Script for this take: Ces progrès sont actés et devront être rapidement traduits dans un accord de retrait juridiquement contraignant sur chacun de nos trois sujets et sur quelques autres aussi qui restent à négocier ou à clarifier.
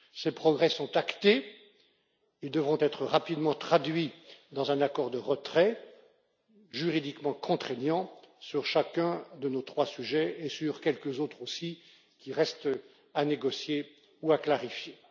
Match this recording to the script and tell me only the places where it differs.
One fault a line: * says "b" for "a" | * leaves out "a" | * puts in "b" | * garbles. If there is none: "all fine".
all fine